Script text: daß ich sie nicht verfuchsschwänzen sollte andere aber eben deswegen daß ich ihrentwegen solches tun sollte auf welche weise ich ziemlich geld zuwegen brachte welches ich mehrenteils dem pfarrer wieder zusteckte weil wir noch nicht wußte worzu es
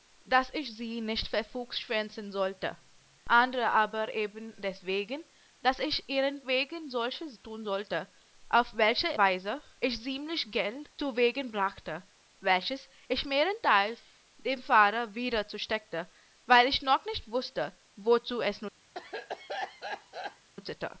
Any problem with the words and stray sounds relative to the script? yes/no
yes